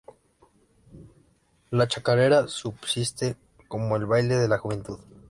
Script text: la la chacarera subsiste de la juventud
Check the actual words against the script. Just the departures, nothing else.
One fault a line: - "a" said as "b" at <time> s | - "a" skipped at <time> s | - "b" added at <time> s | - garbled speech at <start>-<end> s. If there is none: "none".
- "la" skipped at 1.9 s
- "como el baile" added at 3.7 s